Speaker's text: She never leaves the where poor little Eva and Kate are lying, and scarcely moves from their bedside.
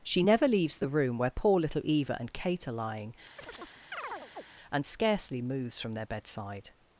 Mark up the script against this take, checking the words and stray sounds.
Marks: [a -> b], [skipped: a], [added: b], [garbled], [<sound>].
She never leaves the [added: room] where poor little Eva and Kate are lying, [chirp] and scarcely moves from their bedside.